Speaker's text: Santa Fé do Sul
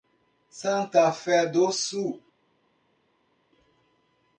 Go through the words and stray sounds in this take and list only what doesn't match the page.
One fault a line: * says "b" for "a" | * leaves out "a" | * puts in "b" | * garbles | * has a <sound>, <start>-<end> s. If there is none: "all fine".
all fine